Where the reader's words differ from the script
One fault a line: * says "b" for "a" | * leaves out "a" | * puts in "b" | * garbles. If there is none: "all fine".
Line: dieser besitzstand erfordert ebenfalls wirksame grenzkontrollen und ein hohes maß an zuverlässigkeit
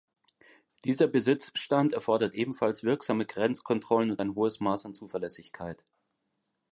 all fine